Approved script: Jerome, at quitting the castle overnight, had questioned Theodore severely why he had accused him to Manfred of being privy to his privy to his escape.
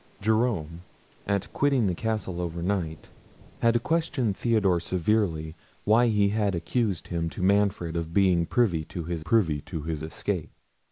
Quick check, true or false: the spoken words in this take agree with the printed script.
true